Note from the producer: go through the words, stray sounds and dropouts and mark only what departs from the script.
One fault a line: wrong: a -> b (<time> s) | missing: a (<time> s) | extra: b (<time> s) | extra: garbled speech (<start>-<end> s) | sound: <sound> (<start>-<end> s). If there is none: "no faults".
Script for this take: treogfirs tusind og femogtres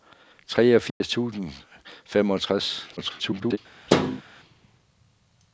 sound: dropout (0.9-1.0 s)
extra: garbled speech (3.0-3.6 s)
sound: thud (3.9-4.2 s)